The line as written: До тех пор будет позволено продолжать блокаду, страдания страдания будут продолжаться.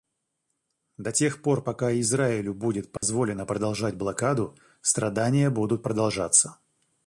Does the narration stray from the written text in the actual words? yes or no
yes